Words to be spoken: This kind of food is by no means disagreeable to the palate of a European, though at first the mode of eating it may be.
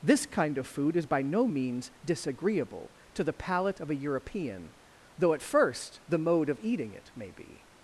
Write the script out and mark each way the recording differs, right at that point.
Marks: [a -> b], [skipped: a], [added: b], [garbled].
This kind of food is by no means disagreeable to the palate of a European, though at first the mode of eating it may be.